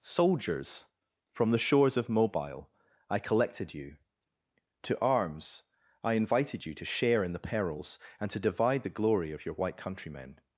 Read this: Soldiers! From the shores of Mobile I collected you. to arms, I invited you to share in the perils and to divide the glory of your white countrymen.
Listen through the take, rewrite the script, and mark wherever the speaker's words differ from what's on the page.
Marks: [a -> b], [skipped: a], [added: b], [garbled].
Soldiers! From the shores of Mobile I collected you. to arms, I invited you to share in the perils and to divide the glory of your white countrymen.